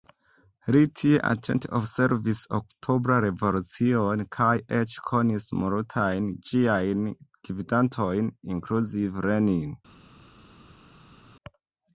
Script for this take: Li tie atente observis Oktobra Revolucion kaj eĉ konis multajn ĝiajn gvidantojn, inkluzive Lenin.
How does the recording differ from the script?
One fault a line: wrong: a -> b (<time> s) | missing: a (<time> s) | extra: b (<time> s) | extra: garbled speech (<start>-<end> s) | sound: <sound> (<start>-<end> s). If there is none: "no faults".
no faults